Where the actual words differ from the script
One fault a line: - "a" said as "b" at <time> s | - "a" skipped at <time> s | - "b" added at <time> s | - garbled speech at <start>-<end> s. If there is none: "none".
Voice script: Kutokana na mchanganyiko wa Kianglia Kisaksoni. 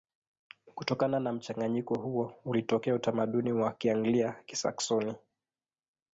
- "huo ulitokea utamaduni" added at 2.0 s